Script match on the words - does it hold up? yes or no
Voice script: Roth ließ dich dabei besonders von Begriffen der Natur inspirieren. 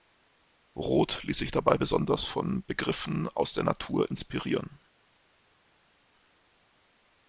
no